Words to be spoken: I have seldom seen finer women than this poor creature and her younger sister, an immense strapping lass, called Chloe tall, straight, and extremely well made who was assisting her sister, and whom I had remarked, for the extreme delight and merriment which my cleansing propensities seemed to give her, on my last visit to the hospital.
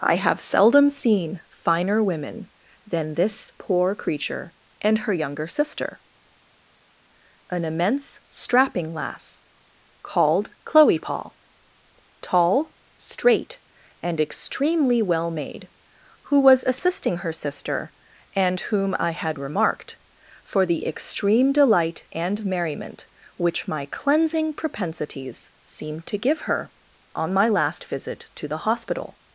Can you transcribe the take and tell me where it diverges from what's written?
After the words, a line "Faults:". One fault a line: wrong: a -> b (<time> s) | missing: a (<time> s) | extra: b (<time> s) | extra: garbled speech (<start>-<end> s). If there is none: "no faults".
I have seldom seen finer women than this poor creature and her younger sister, an immense strapping lass, called Chloe paul tall, straight, and extremely well made who was assisting her sister, and whom I had remarked, for the extreme delight and merriment which my cleansing propensities seemed to give her, on my last visit to the hospital.
Faults:
extra: paul (11.0 s)